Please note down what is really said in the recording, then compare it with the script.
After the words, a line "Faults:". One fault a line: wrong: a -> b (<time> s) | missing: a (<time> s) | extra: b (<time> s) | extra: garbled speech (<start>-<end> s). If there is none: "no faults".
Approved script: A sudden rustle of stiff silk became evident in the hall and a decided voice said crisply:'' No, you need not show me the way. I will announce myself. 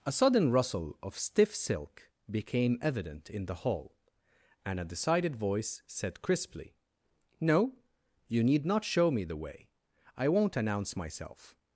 A sudden rustle of stiff silk became evident in the hall and a decided voice said crisply:'' No, you need not show me the way. I won't announce myself.
Faults:
wrong: will -> won't (10.3 s)